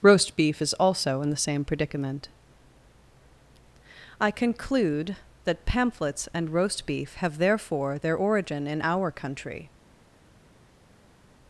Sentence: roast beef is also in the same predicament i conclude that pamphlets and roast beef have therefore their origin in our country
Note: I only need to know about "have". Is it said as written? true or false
true